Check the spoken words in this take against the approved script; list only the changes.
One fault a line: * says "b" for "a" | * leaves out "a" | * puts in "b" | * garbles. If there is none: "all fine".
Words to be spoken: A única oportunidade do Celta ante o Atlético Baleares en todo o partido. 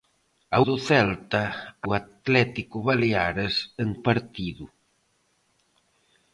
* leaves out "única oportunidade"
* leaves out "ante"
* leaves out "todo"